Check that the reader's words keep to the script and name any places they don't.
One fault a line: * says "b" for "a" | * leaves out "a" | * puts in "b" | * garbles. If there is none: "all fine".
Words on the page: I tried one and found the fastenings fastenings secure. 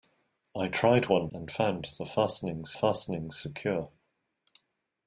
all fine